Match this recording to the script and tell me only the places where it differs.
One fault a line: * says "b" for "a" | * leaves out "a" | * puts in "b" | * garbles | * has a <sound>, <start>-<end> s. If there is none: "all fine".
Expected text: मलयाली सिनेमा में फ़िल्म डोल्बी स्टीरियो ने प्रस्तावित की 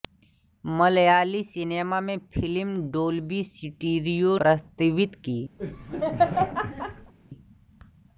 * leaves out "ने"
* has a laugh, 5.6-7.1 s